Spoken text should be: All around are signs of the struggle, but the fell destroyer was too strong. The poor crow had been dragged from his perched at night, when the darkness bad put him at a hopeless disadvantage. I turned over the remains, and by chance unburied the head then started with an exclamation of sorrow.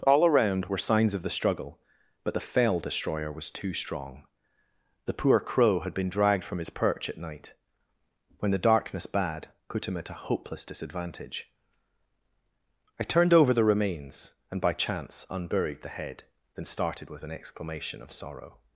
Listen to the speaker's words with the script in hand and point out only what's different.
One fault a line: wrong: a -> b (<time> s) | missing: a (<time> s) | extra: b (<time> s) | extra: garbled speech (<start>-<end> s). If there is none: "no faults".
wrong: are -> were (0.6 s)
wrong: perched -> perch (6.7 s)